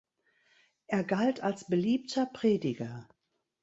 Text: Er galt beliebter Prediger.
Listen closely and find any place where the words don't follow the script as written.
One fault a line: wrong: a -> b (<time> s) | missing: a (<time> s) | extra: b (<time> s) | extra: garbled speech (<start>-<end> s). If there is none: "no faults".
extra: als (1.4 s)